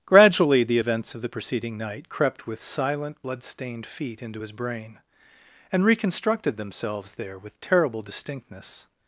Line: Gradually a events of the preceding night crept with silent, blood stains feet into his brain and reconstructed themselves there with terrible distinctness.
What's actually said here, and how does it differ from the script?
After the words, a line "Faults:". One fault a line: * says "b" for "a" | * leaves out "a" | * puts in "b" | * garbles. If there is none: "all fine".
Gradually the events of the preceding night crept with silent, blood stained feet into his brain and reconstructed themselves there with terrible distinctness.
Faults:
* says "the" for "a"
* says "stained" for "stains"